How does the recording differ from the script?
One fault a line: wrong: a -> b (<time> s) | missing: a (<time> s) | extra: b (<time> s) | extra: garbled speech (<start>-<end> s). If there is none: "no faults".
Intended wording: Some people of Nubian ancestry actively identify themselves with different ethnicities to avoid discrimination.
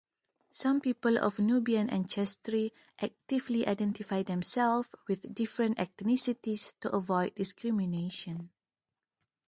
no faults